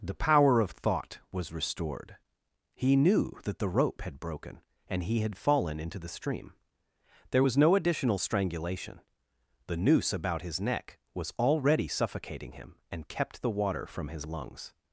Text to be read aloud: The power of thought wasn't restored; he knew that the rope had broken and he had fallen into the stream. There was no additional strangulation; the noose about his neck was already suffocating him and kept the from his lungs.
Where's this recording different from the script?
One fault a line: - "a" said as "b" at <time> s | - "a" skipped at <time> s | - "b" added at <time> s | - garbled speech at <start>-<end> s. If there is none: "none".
- "wasn't" said as "was" at 1.3 s
- "water" added at 13.5 s